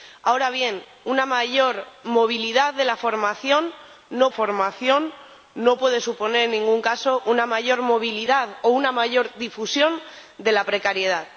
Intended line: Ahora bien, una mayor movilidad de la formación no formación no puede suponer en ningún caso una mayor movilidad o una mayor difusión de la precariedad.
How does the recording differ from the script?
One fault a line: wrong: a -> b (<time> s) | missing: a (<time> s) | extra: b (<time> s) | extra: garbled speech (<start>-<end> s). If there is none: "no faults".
no faults